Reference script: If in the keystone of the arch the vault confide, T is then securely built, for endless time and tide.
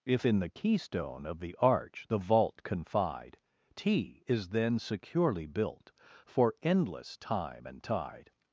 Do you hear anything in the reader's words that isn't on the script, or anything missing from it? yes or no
no